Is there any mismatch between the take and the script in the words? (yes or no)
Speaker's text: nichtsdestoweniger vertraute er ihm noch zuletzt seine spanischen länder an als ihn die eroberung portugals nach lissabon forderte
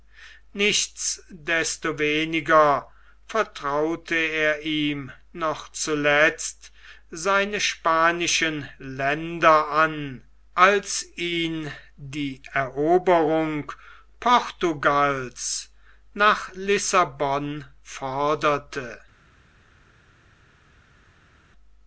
no